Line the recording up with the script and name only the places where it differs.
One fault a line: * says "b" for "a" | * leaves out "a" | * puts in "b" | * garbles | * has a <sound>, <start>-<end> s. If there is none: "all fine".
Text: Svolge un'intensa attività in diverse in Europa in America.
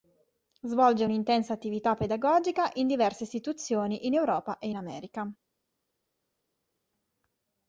* puts in "pedagogica"
* puts in "istituzioni"
* puts in "e"